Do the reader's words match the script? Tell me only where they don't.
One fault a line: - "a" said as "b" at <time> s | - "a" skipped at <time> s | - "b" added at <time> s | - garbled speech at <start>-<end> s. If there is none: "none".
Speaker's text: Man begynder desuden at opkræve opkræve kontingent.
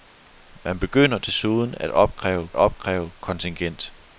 none